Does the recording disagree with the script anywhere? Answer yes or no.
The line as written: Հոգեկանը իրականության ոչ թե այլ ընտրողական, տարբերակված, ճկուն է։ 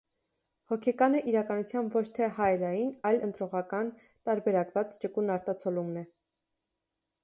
yes